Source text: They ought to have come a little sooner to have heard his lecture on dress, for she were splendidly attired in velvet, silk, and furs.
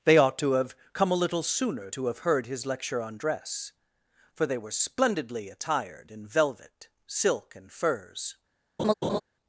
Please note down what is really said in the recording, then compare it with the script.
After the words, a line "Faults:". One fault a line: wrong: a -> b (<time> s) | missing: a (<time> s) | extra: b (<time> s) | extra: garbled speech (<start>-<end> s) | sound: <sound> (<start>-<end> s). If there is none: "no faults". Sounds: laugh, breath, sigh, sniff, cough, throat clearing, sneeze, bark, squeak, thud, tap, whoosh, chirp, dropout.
They ought to have come a little sooner to have heard his lecture on dress, for they were splendidly attired in velvet, silk, and furs.
Faults:
wrong: she -> they (4.4 s)
sound: laugh (8.8-9.2 s)